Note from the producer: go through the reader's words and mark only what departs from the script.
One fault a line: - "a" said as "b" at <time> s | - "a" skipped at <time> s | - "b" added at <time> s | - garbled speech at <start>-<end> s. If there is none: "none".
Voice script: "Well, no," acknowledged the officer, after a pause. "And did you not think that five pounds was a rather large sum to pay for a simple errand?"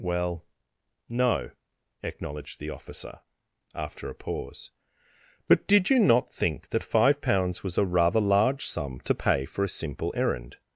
- "And" said as "But" at 5.5 s